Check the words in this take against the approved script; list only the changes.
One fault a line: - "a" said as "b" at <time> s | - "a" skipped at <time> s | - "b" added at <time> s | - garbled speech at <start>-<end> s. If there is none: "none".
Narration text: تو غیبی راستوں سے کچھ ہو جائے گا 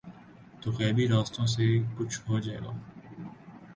none